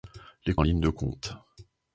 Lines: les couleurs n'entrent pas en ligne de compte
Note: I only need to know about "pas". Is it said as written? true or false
false